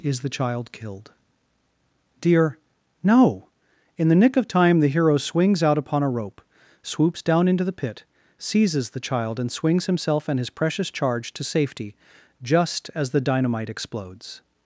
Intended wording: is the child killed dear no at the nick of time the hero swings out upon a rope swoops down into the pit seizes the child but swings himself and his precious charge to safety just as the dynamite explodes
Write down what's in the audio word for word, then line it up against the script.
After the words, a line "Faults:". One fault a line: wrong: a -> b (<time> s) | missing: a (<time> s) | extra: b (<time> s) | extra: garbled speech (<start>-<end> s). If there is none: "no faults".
is the child killed dear no in the nick of time the hero swings out upon a rope swoops down into the pit seizes the child and swings himself and his precious charge to safety just as the dynamite explodes
Faults:
wrong: at -> in (4.0 s)
wrong: but -> and (9.4 s)